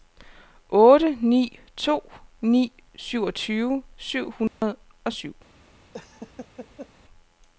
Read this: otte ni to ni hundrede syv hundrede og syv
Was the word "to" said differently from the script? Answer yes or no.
no